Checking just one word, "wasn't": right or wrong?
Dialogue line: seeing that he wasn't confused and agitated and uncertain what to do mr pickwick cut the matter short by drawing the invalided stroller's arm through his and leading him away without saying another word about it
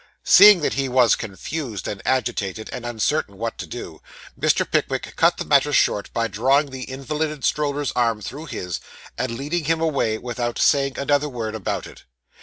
wrong